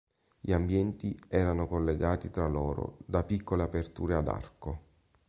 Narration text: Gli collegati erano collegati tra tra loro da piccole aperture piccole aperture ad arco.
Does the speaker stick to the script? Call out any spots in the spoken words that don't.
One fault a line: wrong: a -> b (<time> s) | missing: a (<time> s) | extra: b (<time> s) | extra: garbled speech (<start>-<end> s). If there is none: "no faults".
wrong: collegati -> ambienti (0.5 s)
missing: tra (2.5 s)
missing: piccole aperture (4.2 s)